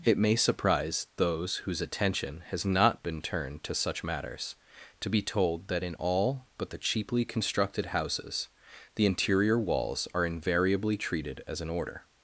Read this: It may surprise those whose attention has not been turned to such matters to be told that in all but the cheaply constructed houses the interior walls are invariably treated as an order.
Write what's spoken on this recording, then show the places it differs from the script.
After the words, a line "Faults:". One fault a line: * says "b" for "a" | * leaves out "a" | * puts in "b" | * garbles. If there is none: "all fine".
It may surprise those whose attention has not been turned to such matters to be told that in all but the cheaply constructed houses the interior walls are invariably treated as an order.
Faults:
all fine